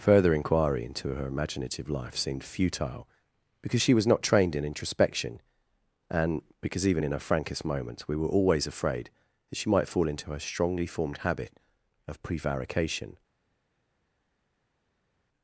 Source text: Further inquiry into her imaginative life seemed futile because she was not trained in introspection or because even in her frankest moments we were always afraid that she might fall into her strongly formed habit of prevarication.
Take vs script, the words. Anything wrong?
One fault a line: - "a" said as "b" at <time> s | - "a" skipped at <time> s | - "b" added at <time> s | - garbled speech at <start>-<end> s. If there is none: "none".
- "or" said as "and" at 6.1 s